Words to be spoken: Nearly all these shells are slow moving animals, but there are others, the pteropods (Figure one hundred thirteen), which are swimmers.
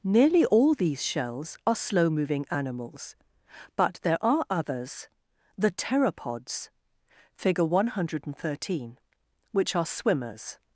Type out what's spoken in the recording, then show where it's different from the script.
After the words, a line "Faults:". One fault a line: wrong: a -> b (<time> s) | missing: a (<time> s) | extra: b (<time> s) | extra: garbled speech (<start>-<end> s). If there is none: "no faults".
Nearly all these shells are slow moving animals, but there are others, the pteropods (Figure one hundred thirteen), which are swimmers.
Faults:
no faults